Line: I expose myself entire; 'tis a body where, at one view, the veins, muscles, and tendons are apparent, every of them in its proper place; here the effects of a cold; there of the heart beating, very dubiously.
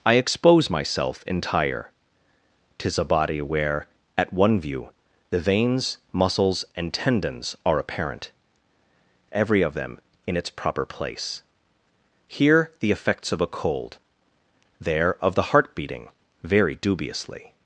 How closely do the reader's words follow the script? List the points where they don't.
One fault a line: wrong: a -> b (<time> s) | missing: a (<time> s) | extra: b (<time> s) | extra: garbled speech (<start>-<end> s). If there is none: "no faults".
no faults